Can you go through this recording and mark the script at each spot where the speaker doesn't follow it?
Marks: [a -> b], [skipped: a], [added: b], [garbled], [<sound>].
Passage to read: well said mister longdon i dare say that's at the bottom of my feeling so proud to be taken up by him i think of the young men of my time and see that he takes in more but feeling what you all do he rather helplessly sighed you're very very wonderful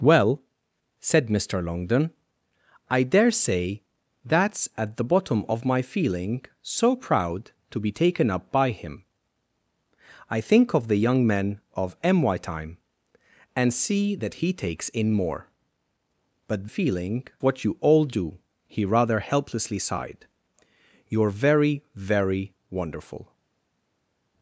well said mister longdon i dare say that's at the bottom of my feeling so proud to be taken up by him i think of the young men of my time and see that he takes in more but feeling what you all do he rather helplessly sighed you're very very wonderful